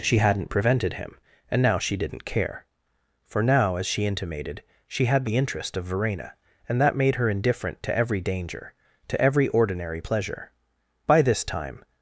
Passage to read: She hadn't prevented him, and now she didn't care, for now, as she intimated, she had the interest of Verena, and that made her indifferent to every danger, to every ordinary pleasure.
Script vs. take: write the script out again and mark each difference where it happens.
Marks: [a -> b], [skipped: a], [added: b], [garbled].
She hadn't prevented him, and now she didn't care, for now, as she intimated, she had the interest of Verena, and that made her indifferent to every danger, to every ordinary pleasure. [added: By this time]